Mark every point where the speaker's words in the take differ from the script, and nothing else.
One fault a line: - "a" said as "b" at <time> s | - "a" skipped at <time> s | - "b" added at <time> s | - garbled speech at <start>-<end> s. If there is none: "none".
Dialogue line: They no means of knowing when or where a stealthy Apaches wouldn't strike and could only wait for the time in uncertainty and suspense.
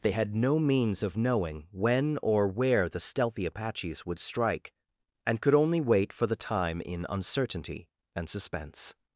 - "had" added at 0.1 s
- "a" said as "the" at 2.9 s
- "wouldn't" said as "would" at 4.1 s